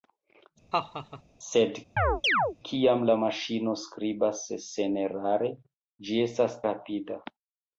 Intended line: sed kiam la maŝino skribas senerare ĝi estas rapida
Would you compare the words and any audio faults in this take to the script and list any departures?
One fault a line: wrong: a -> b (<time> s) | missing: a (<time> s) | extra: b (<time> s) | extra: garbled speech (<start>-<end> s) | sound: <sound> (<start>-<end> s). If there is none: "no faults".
sound: laugh (0.7-1.2 s)
sound: chirp (2.0-2.6 s)